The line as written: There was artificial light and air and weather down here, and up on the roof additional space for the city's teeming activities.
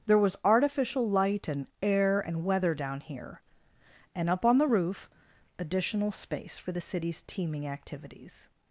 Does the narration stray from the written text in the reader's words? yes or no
no